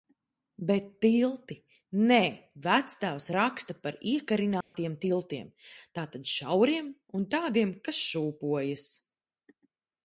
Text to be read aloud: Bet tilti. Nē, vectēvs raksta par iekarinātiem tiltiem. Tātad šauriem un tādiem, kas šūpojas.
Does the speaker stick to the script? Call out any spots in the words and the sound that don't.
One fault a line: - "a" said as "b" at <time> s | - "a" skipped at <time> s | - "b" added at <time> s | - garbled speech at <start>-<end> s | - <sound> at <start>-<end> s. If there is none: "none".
- dropout at 4.6-4.7 s